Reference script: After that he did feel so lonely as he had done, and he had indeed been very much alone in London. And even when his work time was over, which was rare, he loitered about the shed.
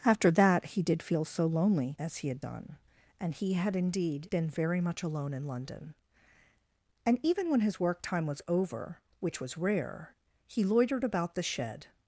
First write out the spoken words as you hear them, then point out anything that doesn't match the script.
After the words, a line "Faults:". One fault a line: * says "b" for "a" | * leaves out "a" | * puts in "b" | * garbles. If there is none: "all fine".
After that he did feel so lonely as he had done, and he had indeed been very much alone in London. And even when his work time was over, which was rare, he loitered about the shed.
Faults:
all fine